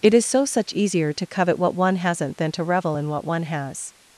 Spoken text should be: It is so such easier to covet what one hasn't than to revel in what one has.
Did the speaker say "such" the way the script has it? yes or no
yes